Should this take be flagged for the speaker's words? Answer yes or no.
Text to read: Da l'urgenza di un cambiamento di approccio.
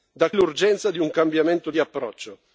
no